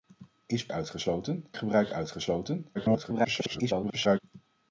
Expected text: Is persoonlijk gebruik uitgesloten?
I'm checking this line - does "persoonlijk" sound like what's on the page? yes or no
no